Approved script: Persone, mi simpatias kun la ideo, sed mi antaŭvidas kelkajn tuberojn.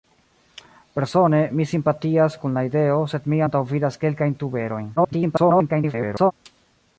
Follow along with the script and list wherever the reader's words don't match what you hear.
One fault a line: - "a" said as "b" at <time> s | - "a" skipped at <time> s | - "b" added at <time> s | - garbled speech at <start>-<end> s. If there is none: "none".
- garbled speech at 5.0-6.3 s